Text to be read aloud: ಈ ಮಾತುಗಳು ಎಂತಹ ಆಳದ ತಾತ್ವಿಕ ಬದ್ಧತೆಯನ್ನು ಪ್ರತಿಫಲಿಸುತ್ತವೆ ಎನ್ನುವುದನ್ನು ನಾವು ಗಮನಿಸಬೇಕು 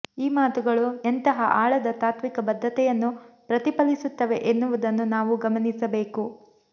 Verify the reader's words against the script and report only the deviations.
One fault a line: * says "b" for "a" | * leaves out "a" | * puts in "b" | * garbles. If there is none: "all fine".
all fine